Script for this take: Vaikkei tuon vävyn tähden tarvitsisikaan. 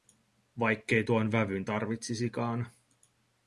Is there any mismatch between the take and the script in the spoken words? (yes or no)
yes